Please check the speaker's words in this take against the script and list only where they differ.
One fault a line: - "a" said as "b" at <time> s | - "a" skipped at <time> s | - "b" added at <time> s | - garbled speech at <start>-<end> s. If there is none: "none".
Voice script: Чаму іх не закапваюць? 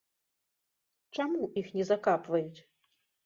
none